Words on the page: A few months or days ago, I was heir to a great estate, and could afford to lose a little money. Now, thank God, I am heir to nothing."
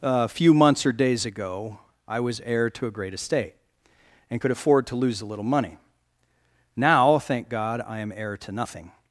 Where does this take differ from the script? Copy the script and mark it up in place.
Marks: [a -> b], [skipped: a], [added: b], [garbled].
A few months or days ago, I was heir to a great estate, and could afford to lose a little money. Now, thank God, I am heir to nothing."